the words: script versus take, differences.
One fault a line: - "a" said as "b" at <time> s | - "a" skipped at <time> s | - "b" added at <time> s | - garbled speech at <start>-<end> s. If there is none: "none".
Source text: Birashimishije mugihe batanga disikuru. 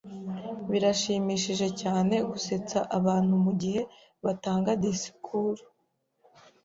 - "cyane gusetsa abantu" added at 1.8 s